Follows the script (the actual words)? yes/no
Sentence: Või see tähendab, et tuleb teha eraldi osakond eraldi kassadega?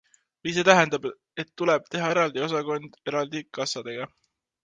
yes